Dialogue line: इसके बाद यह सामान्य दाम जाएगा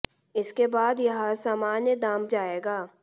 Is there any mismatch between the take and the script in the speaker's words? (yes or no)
no